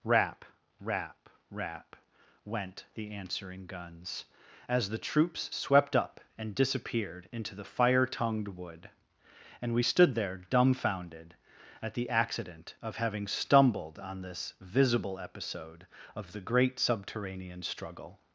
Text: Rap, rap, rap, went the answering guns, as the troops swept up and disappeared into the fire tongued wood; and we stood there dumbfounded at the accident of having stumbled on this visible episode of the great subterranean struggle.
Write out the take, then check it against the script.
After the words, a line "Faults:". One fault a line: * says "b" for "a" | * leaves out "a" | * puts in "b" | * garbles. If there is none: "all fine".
Rap, rap, rap, went the answering guns, as the troops swept up and disappeared into the fire tongued wood; and we stood there dumbfounded at the accident of having stumbled on this visible episode of the great subterranean struggle.
Faults:
all fine